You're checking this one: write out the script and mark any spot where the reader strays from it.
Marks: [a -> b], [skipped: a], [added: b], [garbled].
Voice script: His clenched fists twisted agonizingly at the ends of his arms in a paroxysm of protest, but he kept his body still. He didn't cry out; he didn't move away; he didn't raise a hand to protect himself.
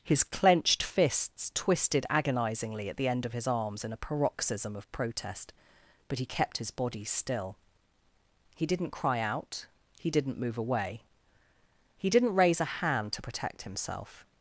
His clenched fists twisted agonizingly at the [ends -> end] of his arms in a paroxysm of protest, but he kept his body still. He didn't cry out; he didn't move away; he didn't raise a hand to protect himself.